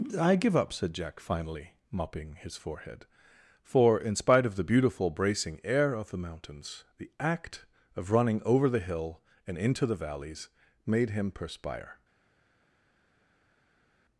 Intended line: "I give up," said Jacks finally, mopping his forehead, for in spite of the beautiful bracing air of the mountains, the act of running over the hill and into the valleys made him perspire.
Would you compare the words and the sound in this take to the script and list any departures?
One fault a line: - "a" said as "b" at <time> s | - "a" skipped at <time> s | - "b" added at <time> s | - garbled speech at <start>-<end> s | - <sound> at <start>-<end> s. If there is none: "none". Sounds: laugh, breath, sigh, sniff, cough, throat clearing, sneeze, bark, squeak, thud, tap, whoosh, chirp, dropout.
- "Jacks" said as "Jack" at 0.9 s